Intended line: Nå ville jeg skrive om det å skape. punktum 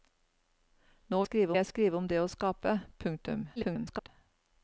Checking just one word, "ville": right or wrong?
wrong